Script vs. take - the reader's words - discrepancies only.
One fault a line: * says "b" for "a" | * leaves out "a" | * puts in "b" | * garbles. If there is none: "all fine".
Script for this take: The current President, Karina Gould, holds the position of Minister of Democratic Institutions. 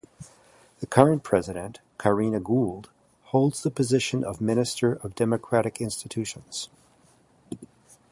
all fine